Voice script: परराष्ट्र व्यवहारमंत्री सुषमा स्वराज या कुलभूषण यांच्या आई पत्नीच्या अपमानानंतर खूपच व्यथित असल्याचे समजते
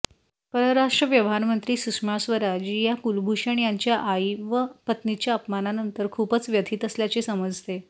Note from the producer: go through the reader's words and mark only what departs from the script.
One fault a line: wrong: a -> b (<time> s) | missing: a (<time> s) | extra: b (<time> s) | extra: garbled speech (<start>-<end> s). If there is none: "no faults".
extra: व (4.4 s)